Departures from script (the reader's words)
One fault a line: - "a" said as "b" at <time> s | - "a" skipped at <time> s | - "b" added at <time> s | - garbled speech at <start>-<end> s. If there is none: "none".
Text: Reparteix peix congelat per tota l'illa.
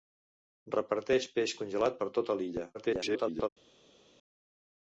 - garbled speech at 2.7-3.5 s